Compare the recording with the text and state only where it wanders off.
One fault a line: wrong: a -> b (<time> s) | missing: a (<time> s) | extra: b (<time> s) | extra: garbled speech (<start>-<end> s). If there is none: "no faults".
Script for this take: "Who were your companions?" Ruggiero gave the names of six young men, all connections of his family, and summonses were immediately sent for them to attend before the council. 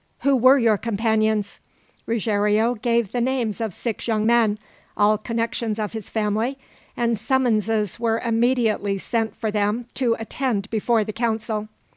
no faults